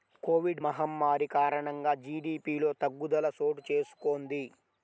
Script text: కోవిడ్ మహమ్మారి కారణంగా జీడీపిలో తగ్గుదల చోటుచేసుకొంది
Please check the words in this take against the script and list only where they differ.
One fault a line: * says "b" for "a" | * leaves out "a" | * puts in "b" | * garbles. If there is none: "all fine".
all fine